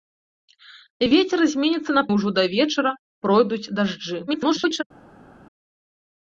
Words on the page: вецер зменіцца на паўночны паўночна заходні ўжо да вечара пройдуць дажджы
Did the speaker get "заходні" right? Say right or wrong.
wrong